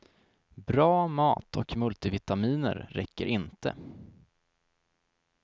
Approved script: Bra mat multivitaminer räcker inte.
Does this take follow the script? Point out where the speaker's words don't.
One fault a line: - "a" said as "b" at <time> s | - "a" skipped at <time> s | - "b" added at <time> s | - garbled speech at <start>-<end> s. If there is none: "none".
- "och" added at 1.6 s